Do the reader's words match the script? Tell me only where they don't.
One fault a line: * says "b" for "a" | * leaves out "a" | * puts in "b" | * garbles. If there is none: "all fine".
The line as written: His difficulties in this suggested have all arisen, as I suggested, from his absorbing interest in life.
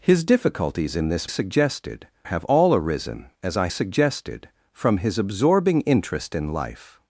all fine